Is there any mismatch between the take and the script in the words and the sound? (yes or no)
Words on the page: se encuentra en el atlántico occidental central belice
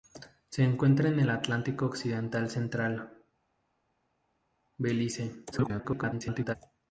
yes